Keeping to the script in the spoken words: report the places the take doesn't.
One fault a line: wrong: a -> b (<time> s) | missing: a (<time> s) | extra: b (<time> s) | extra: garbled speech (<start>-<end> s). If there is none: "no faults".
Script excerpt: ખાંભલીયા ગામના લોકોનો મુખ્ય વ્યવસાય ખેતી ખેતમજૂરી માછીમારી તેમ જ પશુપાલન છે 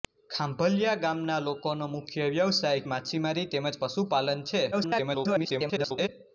missing: ખેતી ખેતમજૂરી (2.8 s)
extra: garbled speech (4.7-6.1 s)